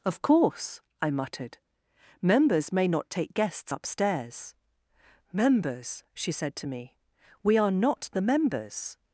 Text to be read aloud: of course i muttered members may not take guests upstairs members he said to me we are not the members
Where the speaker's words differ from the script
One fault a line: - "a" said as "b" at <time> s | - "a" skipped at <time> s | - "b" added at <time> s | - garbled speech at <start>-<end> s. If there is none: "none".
- "he" said as "she" at 6.1 s